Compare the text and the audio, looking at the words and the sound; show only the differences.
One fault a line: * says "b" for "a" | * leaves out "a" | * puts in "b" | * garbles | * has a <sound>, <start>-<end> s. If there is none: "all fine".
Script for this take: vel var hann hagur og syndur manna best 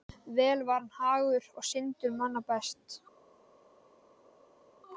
all fine